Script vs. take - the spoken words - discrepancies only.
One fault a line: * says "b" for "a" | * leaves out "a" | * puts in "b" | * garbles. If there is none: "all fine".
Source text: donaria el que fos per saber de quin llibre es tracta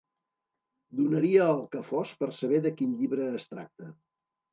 all fine